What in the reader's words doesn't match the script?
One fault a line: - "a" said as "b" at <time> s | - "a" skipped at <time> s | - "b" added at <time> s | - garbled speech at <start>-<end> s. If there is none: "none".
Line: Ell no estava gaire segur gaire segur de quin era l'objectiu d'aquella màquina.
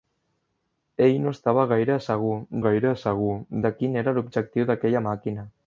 none